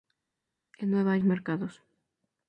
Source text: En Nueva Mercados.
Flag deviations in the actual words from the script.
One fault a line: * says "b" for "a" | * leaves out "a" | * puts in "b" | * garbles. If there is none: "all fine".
all fine